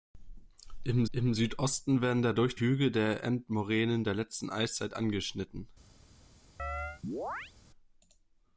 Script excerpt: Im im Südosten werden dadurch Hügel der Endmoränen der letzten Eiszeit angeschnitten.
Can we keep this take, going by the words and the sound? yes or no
no